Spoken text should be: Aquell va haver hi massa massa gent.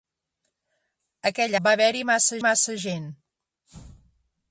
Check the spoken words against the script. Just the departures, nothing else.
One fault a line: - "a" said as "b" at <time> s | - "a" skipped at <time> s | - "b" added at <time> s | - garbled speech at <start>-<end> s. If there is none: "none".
none